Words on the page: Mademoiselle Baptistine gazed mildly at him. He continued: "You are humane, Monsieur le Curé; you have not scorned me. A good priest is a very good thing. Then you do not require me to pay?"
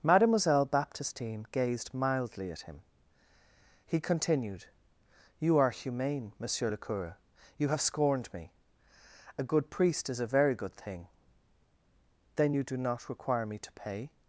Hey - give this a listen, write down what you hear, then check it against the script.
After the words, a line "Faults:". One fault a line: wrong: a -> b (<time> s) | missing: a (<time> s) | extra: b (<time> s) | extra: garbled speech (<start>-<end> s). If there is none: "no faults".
Mademoiselle Baptistine gazed mildly at him. He continued: "You are humane, Monsieur le Curé; you have scorned me. A good priest is a very good thing. Then you do not require me to pay?"
Faults:
missing: not (7.8 s)